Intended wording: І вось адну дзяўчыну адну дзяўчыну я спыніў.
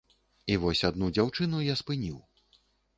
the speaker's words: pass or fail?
fail